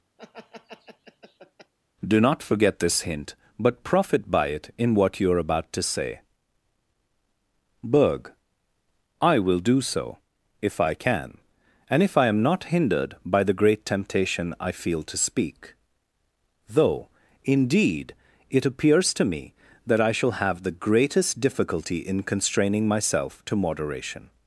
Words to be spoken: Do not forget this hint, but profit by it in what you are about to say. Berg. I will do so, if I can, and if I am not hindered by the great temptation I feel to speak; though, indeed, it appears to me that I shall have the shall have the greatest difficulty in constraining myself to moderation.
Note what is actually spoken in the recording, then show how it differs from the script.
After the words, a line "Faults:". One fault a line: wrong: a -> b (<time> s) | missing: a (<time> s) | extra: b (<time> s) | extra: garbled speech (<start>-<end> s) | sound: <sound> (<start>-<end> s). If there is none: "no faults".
Do not forget this hint, but profit by it in what you are about to say. Berg. I will do so, if I can, and if I am not hindered by the great temptation I feel to speak; though, indeed, it appears to me that I shall have the greatest difficulty in constraining myself to moderation.
Faults:
sound: laugh (0.2-1.7 s)
missing: shall have the (20.8 s)